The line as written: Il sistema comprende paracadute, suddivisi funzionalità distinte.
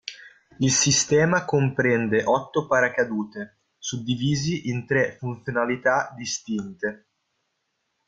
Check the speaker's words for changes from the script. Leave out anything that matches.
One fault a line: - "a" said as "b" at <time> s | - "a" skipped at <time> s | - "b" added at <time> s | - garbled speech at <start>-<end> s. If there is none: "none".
- "otto" added at 2.2 s
- "in tre" added at 4.7 s